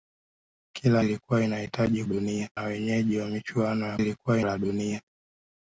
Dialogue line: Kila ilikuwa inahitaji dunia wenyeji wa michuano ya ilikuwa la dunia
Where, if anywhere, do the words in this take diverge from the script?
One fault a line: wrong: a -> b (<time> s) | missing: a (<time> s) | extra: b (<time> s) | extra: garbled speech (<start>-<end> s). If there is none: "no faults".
no faults